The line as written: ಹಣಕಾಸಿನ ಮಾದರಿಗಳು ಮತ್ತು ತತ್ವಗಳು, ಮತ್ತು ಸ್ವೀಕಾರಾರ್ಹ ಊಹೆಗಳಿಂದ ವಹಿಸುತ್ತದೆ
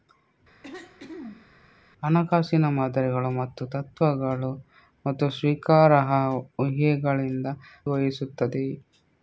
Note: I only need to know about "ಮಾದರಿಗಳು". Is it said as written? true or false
true